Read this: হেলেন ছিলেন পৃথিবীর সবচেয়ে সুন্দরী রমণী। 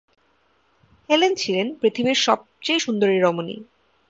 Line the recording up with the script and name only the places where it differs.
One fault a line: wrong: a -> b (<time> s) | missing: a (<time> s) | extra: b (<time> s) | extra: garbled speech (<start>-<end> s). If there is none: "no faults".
no faults